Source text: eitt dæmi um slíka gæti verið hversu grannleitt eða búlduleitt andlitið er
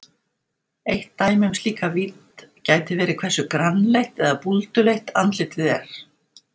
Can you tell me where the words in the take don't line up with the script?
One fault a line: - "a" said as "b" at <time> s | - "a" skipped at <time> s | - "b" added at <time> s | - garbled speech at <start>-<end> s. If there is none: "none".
- "vídd" added at 1.9 s